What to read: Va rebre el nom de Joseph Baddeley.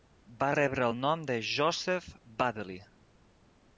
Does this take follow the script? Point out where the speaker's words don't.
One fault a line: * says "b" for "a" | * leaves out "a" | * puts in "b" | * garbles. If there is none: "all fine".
all fine